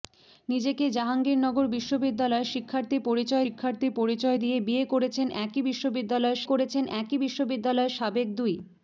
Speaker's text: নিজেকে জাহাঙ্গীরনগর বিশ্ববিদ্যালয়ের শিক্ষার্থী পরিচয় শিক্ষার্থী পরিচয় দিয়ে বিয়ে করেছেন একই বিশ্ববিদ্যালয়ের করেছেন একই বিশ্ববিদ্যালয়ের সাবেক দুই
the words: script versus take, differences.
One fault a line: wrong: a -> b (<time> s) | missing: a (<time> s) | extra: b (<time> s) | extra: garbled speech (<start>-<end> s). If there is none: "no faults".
no faults